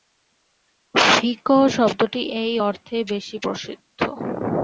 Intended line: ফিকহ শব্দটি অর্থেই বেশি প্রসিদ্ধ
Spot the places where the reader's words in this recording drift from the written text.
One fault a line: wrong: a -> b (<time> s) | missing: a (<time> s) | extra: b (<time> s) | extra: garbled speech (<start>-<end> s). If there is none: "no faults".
extra: এই (2.4 s)